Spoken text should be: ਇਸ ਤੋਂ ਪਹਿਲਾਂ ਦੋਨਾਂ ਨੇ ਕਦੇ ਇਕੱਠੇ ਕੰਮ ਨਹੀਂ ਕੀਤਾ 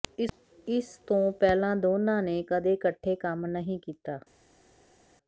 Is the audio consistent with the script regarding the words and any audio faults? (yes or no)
yes